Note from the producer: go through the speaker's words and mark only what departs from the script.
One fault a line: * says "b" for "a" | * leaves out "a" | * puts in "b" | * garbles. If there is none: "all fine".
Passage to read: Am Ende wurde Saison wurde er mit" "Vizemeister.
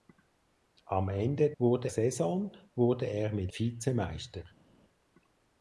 all fine